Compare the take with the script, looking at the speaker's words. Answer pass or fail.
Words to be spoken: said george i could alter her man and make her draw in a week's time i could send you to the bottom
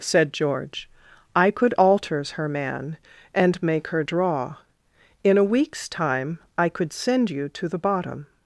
fail